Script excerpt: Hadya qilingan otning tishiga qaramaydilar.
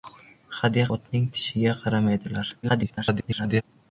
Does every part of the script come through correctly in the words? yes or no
no